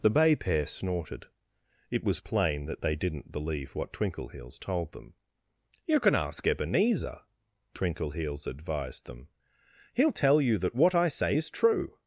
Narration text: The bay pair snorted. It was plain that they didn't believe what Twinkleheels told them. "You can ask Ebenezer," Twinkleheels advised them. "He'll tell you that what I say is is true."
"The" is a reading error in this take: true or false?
false